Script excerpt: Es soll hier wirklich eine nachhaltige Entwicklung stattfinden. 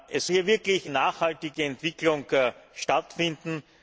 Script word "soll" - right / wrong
wrong